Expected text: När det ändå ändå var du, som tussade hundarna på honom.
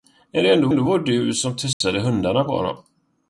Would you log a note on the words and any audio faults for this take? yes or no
yes